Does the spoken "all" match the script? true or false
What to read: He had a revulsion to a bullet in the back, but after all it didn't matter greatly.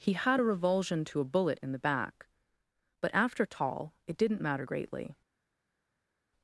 false